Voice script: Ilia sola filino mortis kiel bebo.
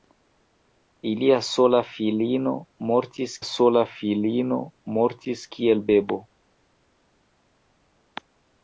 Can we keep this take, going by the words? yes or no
no